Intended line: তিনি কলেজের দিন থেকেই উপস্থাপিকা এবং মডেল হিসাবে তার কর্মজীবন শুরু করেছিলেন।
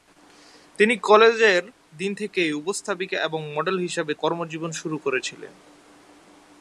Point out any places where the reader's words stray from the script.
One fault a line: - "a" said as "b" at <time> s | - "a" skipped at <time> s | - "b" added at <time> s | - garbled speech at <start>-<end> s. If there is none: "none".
- "তার" skipped at 4.1 s